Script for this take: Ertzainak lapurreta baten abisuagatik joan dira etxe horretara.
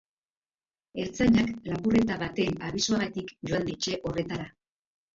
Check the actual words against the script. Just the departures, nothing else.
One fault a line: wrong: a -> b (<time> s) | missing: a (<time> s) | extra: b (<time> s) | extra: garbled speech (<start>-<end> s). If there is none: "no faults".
missing: dira (3.7 s)